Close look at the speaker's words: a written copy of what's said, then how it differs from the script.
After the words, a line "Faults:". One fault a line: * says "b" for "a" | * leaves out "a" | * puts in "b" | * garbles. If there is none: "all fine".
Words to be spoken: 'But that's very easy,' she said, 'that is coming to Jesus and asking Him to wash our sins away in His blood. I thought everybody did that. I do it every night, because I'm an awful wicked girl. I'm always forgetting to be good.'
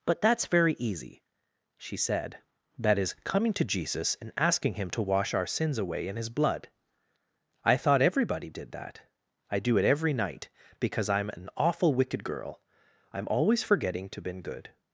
'But that's very easy,' she said, 'that is coming to Jesus and asking Him to wash our sins away in His blood. I thought everybody did that. I do it every night, because I'm an awful wicked girl. I'm always forgetting to been good.'
Faults:
* says "been" for "be"